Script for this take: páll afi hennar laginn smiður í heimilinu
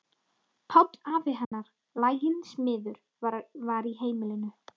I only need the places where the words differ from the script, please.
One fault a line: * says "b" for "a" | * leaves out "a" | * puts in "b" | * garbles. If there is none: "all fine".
* puts in "var"